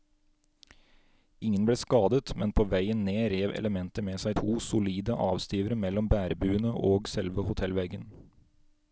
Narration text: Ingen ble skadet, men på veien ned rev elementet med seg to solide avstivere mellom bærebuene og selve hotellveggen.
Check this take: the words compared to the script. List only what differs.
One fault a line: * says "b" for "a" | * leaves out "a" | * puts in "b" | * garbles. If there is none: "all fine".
all fine